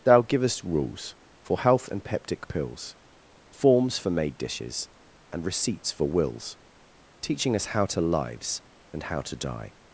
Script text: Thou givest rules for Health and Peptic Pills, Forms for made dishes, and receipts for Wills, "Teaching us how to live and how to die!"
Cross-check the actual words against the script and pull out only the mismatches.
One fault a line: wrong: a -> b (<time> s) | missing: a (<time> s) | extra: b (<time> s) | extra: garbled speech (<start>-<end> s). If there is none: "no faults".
wrong: live -> lives (8.0 s)